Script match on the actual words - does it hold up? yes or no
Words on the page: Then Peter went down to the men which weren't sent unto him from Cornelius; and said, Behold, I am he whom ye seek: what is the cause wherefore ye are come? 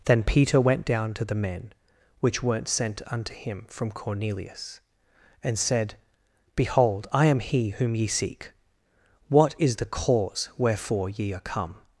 yes